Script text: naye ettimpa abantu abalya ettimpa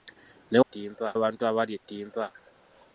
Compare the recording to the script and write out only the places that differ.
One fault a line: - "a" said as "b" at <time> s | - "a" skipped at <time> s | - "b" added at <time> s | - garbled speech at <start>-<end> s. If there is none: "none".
none